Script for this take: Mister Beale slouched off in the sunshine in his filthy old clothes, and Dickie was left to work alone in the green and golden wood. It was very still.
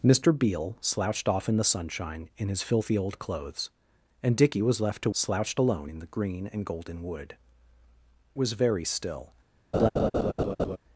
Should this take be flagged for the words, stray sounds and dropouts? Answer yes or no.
yes